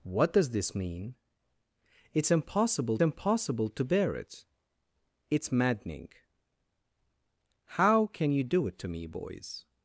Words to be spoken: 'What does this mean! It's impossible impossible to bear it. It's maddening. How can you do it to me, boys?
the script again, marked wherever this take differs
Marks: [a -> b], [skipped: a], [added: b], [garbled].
'What does this mean! It's impossible impossible to bear it. It's maddening. How can you do it to me, boys?